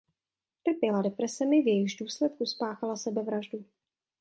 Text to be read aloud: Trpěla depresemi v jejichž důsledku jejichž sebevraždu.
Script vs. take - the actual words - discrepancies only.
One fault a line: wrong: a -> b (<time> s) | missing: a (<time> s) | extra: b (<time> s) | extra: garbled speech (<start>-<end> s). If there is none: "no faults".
wrong: jejichž -> spáchala (2.4 s)